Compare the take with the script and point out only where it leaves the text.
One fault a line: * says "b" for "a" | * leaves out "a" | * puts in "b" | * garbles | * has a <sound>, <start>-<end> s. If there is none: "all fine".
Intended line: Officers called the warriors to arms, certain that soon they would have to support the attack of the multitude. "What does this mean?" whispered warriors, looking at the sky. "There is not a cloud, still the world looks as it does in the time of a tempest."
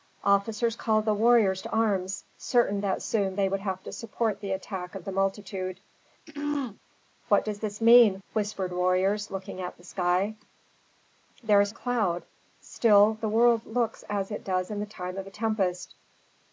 * has a throat clearing, 6.3-6.8 s
* leaves out "not"